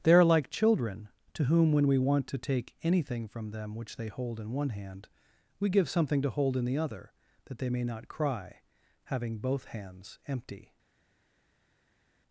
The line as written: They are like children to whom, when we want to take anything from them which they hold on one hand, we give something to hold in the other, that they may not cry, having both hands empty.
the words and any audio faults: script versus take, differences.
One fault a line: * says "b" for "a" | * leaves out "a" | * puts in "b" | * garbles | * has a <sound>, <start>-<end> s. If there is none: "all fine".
* says "in" for "on"